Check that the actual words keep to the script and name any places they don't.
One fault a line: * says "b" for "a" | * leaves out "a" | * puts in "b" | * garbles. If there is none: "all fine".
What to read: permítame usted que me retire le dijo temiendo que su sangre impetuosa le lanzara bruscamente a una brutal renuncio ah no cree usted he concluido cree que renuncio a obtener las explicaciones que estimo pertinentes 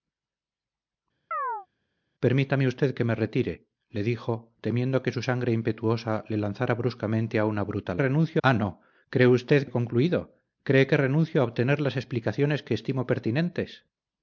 all fine